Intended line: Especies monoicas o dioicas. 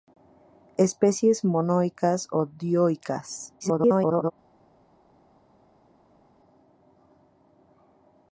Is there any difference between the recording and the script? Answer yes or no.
yes